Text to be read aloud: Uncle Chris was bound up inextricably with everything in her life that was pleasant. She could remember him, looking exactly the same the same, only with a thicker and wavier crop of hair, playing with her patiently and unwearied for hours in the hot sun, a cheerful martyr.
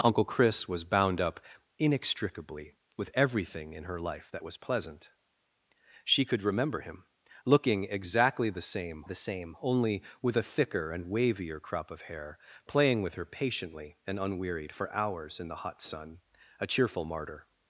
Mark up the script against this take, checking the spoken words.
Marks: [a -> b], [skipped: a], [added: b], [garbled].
Uncle Chris was bound up inextricably with everything in her life that was pleasant. She could remember him, looking exactly the same the same, only with a thicker and wavier crop of hair, playing with her patiently and unwearied for hours in the hot sun, a cheerful martyr.